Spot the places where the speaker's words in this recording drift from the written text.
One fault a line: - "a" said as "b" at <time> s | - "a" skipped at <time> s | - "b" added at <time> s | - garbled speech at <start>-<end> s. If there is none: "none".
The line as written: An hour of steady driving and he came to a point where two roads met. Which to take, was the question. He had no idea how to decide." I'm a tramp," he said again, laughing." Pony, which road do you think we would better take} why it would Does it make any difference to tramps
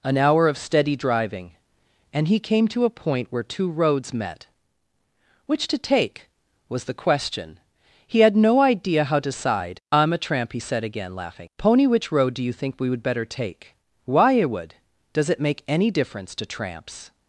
none